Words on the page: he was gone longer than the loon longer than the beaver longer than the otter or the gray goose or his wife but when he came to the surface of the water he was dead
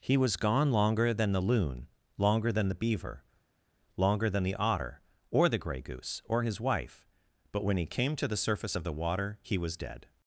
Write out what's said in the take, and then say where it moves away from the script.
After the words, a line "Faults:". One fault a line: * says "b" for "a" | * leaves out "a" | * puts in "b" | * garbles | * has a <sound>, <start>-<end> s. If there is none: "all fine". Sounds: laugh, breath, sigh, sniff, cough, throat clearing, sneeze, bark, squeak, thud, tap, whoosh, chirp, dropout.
he was gone longer than the loon longer than the beaver longer than the otter or the gray goose or his wife but when he came to the surface of the water he was dead
Faults:
all fine